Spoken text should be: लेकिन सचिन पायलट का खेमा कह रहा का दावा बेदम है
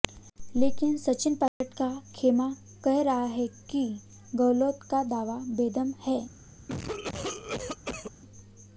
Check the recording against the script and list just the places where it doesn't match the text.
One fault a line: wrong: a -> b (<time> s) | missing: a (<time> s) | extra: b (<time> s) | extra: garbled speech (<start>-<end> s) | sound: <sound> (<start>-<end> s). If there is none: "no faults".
sound: dropout (1.5-1.6 s)
extra: है कि गहलोत (3.2 s)
sound: cough (6.7-8.1 s)